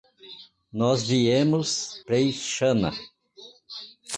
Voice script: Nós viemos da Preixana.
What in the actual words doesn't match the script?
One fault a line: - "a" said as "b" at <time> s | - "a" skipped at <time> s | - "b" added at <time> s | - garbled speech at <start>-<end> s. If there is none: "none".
- "da" skipped at 2.0 s